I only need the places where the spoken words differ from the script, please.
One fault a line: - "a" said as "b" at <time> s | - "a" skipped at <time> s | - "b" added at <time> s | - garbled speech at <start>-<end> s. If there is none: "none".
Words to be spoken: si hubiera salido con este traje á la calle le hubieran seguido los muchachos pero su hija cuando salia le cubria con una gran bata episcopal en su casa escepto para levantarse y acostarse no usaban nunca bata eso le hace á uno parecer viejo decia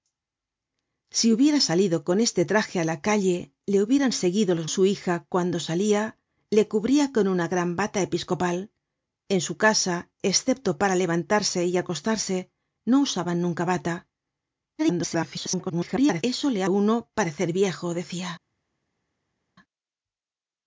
- "muchachos pero" skipped at 4.7 s
- garbled speech at 14.8-16.2 s
- "hace" skipped at 16.6 s